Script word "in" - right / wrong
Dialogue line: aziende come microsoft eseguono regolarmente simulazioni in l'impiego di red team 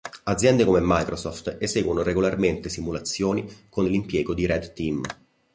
wrong